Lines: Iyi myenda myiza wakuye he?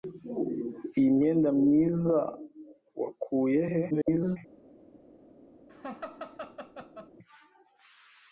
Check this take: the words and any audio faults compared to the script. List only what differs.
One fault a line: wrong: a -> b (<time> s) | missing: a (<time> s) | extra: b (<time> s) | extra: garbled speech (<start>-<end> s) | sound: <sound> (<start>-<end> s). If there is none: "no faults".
extra: garbled speech (3.9-4.4 s)
sound: laugh (5.7-7.1 s)